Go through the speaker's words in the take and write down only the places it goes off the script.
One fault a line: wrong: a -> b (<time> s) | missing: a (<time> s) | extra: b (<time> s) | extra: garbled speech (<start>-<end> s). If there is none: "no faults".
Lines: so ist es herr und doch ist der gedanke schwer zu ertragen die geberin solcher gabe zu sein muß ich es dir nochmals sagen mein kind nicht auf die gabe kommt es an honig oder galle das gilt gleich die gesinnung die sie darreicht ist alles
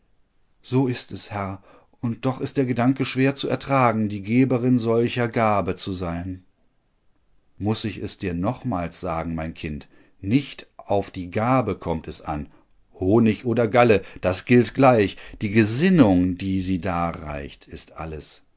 no faults